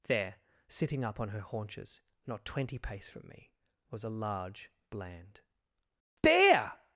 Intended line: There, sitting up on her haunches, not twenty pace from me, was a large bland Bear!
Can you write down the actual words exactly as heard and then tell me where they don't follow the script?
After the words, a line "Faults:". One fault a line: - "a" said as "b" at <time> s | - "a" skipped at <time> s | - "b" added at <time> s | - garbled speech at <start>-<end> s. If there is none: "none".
There, sitting up on her haunches, not twenty pace from me, was a large bland Bear!
Faults:
none